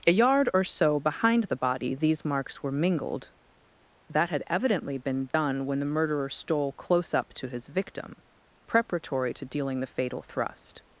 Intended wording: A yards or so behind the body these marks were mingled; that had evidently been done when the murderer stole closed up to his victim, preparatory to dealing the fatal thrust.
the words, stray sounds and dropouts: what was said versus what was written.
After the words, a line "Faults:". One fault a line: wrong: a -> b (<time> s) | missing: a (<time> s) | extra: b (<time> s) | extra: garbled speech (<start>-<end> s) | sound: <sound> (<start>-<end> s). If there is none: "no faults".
A yard or so behind the body these marks were mingled; that had evidently been done when the murderer stole close up to his victim, preparatory to dealing the fatal thrust.
Faults:
wrong: yards -> yard (0.1 s)
sound: dropout (5.3-5.3 s)
wrong: closed -> close (6.7 s)